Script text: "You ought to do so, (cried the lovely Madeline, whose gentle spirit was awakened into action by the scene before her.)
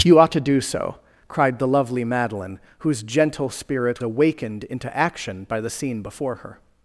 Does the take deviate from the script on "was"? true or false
true